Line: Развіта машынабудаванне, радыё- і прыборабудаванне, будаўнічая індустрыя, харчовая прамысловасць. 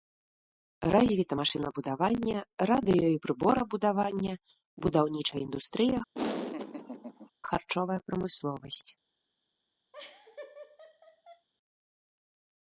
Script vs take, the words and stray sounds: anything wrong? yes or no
yes